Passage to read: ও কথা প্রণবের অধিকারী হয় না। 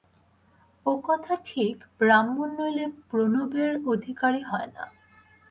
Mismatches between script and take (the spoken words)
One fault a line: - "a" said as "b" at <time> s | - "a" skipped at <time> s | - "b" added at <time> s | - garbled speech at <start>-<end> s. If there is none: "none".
- "ঠিক ব্রাহ্মণ নইলে" added at 1.4 s